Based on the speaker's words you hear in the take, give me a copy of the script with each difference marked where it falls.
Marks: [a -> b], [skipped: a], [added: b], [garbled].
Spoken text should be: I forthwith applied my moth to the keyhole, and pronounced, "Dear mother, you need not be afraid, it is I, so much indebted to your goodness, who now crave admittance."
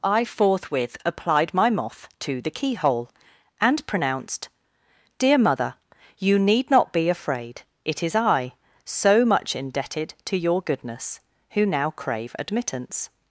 I forthwith applied my moth to the keyhole, and pronounced, "Dear mother, you need not be afraid, it is I, so much indebted to your goodness, who now crave admittance."